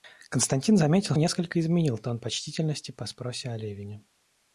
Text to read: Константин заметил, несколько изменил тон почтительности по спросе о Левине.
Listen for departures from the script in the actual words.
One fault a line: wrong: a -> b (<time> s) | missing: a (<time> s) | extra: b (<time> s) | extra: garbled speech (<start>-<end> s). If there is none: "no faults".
no faults